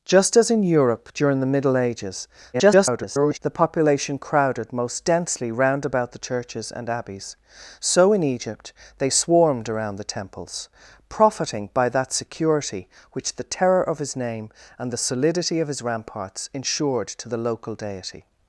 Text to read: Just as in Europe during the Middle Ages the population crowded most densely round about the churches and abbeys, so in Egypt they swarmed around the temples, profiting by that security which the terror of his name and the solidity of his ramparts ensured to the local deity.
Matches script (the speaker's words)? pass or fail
fail